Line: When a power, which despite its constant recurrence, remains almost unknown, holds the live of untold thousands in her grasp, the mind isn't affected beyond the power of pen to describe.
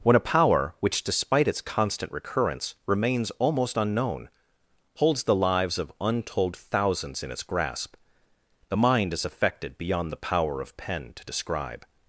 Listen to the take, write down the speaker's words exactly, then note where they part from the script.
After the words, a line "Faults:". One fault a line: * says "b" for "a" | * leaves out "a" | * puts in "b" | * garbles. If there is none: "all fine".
When a power, which despite its constant recurrence, remains almost unknown, holds the lives of untold thousands in its grasp, the mind is affected beyond the power of pen to describe.
Faults:
* says "lives" for "live"
* says "its" for "her"
* says "is" for "isn't"